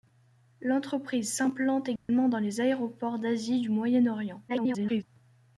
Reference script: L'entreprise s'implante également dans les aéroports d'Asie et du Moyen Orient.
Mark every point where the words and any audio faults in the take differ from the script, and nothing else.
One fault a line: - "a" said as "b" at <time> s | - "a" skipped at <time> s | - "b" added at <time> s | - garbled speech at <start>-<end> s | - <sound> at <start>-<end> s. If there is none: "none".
- dropout at 2.0-2.1 s
- garbled speech at 4.5-5.0 s